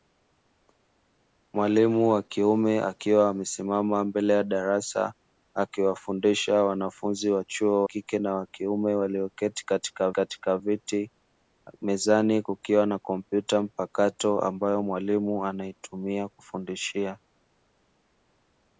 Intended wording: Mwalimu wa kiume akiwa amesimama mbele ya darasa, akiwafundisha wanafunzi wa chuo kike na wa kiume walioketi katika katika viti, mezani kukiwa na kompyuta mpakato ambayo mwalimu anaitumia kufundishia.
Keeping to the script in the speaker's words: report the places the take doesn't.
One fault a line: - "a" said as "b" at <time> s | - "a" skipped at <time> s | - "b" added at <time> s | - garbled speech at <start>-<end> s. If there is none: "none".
none